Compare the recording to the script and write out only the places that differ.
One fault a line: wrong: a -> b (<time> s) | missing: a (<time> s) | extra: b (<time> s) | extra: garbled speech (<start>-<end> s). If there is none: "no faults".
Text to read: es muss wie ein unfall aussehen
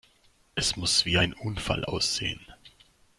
no faults